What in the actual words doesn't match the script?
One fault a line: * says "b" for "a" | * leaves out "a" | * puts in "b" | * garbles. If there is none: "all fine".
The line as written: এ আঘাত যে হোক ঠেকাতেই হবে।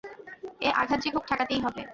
all fine